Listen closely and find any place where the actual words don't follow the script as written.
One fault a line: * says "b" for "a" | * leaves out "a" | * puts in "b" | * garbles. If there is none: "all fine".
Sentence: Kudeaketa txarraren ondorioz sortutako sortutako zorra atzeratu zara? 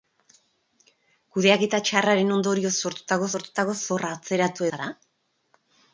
all fine